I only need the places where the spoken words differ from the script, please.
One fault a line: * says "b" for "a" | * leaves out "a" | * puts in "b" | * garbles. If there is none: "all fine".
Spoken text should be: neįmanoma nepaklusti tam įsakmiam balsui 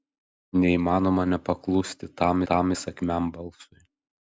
* puts in "tam"